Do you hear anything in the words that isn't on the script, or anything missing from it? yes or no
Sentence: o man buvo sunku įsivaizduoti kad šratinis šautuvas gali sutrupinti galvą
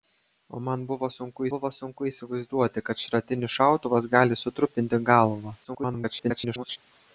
yes